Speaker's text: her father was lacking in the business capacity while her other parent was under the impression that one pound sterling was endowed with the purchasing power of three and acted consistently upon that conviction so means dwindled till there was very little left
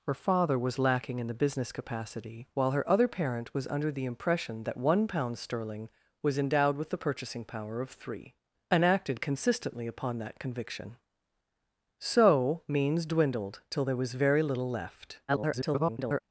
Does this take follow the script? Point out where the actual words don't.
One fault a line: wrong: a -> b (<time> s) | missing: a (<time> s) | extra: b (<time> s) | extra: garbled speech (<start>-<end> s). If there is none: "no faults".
extra: garbled speech (15.3-16.2 s)